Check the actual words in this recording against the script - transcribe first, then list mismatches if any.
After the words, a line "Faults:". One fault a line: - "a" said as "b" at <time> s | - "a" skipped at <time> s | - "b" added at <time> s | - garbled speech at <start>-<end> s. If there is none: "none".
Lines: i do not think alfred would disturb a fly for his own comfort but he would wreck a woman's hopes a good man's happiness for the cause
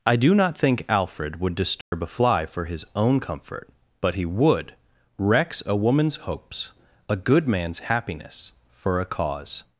i do not think alfred would disturb a fly for his own comfort but he would wrecks a woman's hopes a good man's happiness for a cause
Faults:
- "wreck" said as "wrecks" at 5.2 s
- "the" said as "a" at 9.0 s